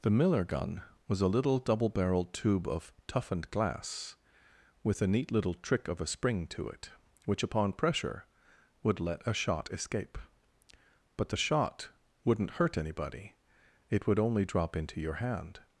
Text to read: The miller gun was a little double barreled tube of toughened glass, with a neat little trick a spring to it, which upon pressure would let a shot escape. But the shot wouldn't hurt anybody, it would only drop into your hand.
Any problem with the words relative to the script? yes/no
yes